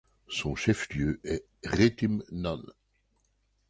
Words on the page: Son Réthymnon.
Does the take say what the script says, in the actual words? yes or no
no